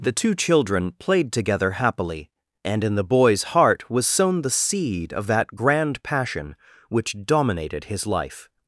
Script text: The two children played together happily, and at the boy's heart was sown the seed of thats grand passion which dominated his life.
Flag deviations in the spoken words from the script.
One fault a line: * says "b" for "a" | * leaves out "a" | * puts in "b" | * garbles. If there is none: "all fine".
* says "in" for "at"
* says "that" for "thats"